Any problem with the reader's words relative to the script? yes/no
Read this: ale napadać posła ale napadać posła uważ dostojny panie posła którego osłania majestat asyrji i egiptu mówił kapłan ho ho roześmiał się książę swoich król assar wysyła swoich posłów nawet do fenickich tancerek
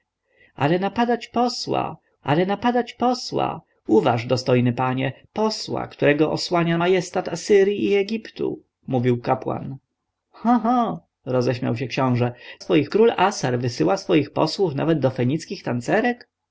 no